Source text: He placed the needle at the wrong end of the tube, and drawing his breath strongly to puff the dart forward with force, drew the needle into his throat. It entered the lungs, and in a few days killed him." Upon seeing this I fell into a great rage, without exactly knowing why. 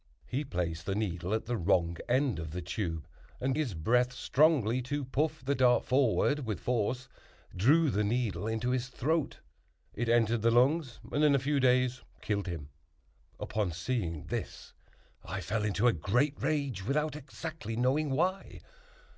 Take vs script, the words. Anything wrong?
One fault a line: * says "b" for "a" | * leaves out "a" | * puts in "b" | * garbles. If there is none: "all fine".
* leaves out "drawing"